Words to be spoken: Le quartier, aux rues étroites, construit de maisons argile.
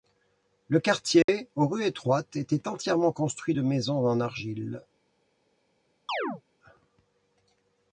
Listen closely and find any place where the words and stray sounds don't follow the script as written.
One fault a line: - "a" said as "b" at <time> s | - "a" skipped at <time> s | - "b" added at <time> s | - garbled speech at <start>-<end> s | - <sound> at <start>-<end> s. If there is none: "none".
- dropout at 1.2-1.3 s
- "était entièrement" added at 2.4 s
- "en" added at 4.0 s
- chirp at 6.1-6.4 s